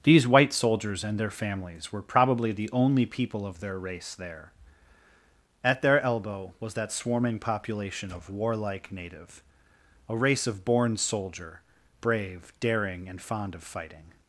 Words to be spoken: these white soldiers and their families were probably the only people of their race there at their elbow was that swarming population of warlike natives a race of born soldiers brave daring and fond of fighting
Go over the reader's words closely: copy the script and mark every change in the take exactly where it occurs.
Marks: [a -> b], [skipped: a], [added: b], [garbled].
these white soldiers and their families were probably the only people of their race there at their elbow was that swarming population of warlike [natives -> native] a race of born [soldiers -> soldier] brave daring and fond of fighting